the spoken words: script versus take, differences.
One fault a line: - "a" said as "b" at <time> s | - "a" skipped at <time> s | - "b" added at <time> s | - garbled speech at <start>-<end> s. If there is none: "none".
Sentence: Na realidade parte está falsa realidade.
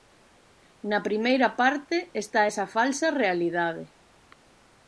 - "realidade" said as "primeira" at 1.1 s
- "esa" added at 2.5 s